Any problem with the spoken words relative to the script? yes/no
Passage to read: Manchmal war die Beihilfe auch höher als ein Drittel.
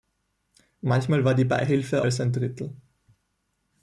yes